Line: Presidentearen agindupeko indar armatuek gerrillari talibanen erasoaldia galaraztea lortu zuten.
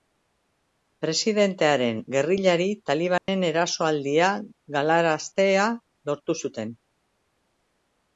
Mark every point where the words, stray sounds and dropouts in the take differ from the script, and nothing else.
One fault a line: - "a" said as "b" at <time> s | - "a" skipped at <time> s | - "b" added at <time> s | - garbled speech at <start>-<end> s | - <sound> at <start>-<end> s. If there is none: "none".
- "agindupeko indar armatuek" skipped at 2.0 s
- dropout at 3.2-3.3 s